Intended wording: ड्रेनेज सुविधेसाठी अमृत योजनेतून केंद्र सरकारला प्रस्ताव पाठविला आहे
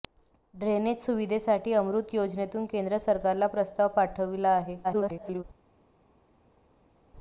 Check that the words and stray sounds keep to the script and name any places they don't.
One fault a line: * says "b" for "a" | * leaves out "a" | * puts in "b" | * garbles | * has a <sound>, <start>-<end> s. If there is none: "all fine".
* garbles